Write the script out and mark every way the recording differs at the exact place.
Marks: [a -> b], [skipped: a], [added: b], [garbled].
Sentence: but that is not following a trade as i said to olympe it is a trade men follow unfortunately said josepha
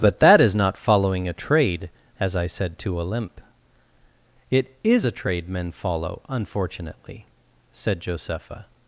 but that is not following a trade as i said to olympe it is a trade men follow unfortunately said josepha